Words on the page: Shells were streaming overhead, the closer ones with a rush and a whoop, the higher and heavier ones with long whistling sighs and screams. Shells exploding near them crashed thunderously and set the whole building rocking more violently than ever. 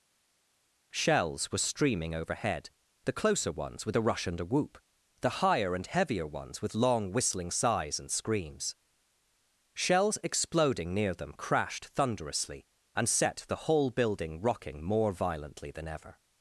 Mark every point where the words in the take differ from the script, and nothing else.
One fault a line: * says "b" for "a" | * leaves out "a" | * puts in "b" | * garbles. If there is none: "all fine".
all fine